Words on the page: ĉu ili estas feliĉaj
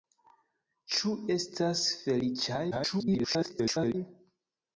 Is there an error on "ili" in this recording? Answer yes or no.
yes